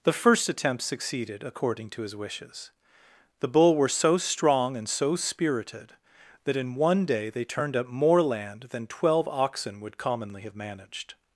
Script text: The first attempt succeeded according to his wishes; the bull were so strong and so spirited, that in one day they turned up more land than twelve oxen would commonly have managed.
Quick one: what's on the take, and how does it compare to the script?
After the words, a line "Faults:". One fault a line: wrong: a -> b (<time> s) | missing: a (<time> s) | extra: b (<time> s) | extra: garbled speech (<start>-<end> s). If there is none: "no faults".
The first attempt succeeded according to his wishes; the bull were so strong and so spirited, that in one day they turned up more land than twelve oxen would commonly have managed.
Faults:
no faults